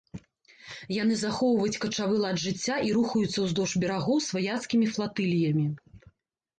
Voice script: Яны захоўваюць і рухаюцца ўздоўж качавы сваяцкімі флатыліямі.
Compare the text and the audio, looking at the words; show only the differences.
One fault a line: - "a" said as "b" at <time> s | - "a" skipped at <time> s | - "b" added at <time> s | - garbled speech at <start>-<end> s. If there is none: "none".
- "качавы лад жыцця" added at 1.8 s
- "качавы" said as "берагоў" at 3.9 s